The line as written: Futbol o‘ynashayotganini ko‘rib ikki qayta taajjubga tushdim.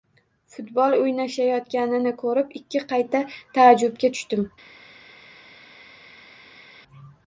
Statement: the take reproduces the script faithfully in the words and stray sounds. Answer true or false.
true